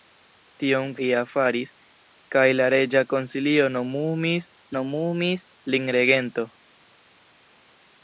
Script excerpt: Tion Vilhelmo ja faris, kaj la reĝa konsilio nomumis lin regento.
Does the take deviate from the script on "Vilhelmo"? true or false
true